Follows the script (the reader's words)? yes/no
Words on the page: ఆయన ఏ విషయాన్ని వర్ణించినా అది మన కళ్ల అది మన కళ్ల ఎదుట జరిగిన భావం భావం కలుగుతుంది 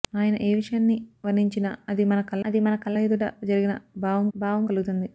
yes